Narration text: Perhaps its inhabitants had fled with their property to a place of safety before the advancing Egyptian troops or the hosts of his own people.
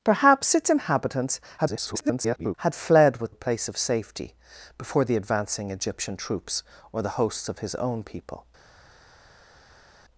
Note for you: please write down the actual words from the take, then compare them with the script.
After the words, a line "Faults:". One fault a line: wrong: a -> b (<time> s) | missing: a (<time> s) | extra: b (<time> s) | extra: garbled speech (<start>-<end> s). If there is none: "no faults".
Perhaps its inhabitants [garbled] had fled with a place of safety before the advancing Egyptian troops or the hosts of his own people.
Faults:
extra: garbled speech (1.6-2.5 s)
missing: their property to (3.3 s)